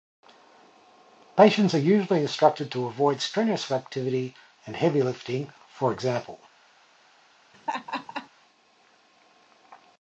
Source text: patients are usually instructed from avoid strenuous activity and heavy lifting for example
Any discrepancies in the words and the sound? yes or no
yes